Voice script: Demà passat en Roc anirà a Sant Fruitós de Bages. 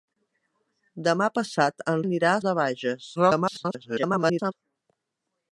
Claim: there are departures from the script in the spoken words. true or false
true